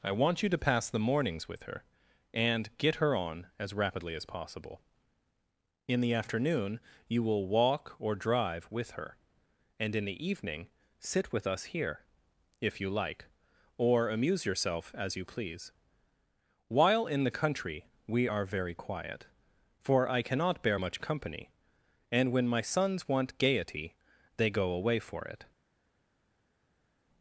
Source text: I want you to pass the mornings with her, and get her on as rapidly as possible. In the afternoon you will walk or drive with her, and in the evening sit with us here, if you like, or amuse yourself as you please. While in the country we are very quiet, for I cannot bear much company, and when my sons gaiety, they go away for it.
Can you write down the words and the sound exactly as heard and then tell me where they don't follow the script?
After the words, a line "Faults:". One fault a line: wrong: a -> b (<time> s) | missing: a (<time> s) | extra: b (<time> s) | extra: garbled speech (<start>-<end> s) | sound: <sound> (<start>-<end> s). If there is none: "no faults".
I want you to pass the mornings with her, and get her on as rapidly as possible. In the afternoon you will walk or drive with her, and in the evening sit with us here, if you like, or amuse yourself as you please. While in the country we are very quiet, for I cannot bear much company, and when my sons want gaiety, they go away for it.
Faults:
extra: want (23.1 s)